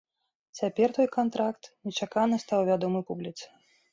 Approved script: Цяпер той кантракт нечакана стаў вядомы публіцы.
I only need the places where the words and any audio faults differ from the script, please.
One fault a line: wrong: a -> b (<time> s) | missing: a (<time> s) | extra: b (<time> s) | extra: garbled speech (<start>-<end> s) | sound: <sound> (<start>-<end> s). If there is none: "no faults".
no faults